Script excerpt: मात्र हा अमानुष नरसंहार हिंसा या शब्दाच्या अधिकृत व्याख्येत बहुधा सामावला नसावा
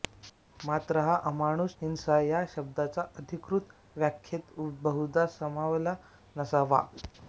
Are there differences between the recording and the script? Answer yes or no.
yes